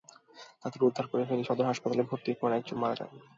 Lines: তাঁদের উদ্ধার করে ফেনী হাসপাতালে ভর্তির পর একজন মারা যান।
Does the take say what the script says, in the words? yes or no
no